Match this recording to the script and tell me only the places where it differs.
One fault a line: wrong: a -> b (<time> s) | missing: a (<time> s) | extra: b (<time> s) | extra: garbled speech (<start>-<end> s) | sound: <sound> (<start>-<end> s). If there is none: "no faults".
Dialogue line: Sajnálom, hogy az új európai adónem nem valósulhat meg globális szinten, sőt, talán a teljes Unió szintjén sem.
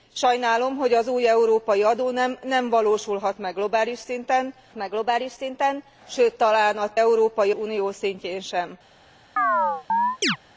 extra: meg globális szinten (4.7 s)
wrong: teljes -> európai (7.0 s)
sound: chirp (9.4-10.4 s)